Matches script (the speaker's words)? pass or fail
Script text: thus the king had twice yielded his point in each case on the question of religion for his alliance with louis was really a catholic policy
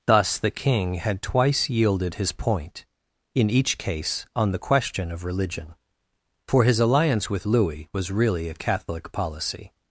pass